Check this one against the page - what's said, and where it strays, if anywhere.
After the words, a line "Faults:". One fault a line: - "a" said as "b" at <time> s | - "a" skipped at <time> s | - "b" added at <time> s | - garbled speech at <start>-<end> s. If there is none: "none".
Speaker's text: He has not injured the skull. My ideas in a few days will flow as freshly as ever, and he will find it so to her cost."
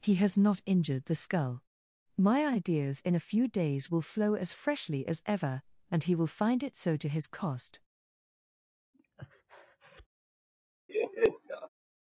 He has not injured the skull. My ideas in a few days will flow as freshly as ever, and he will find it so to his cost."
Faults:
- "her" said as "his" at 7.1 s